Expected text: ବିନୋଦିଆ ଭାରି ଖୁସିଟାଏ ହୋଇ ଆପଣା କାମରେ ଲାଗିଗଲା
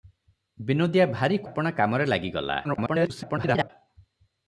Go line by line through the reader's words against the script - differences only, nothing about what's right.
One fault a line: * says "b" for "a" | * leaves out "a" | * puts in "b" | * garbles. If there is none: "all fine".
* leaves out "ଖୁସିଟାଏ ହୋଇ"
* garbles